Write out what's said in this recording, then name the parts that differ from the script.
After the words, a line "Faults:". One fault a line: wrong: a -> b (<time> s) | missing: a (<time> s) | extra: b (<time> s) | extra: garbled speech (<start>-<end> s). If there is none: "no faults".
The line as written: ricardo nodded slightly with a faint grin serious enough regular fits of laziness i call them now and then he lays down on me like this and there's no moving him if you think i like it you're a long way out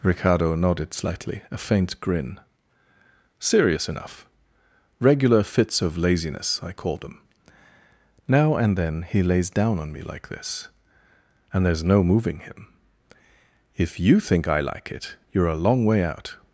ricardo nodded slightly a faint grin serious enough regular fits of laziness i call them now and then he lays down on me like this and there's no moving him if you think i like it you're a long way out
Faults:
missing: with (1.4 s)